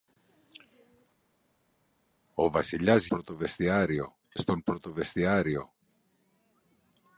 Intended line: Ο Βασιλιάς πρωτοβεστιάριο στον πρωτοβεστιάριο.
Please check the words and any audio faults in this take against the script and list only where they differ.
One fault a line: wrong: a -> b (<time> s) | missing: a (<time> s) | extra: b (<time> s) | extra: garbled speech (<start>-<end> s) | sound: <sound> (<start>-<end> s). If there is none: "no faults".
no faults